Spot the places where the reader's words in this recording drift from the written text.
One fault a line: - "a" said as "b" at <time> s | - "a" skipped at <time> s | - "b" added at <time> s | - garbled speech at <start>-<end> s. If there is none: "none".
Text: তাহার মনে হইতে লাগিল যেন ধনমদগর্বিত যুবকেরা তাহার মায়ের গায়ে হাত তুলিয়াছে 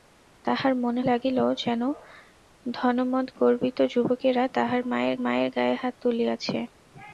- "হইতে" skipped at 1.0 s
- "মায়ের" added at 5.2 s